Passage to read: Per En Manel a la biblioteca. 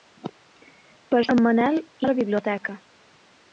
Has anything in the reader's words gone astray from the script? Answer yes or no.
no